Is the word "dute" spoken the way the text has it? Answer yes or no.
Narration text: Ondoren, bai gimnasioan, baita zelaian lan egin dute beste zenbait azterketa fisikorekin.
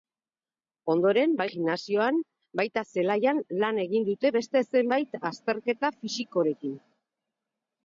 yes